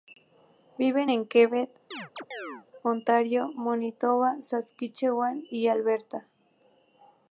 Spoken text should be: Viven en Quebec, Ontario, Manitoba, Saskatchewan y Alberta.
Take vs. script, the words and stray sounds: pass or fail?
fail